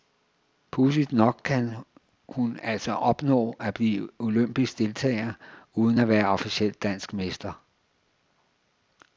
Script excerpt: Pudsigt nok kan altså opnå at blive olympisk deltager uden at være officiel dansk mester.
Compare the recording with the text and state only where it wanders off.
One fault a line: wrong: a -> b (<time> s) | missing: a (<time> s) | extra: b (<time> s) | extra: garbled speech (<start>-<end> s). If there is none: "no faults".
extra: hun (2.3 s)